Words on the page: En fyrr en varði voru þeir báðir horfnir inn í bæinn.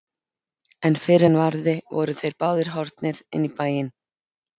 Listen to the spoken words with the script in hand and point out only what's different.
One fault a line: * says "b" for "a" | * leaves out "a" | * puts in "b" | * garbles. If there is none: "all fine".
all fine